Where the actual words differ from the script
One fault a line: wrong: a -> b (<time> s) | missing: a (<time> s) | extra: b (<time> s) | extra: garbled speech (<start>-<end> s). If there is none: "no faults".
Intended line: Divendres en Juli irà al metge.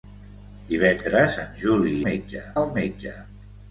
wrong: irà -> metge (2.1 s)